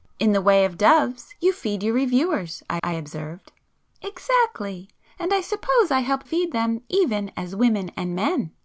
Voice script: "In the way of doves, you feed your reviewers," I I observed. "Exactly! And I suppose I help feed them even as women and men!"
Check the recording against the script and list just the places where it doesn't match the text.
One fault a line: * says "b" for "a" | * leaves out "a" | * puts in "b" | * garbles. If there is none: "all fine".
all fine